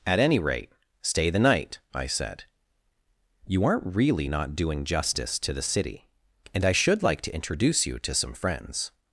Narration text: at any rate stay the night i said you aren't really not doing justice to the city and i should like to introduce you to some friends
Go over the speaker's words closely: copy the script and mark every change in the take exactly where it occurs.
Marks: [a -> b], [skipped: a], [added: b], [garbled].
at any rate stay the night i said you aren't really not doing justice to the city and i should like to introduce you to some friends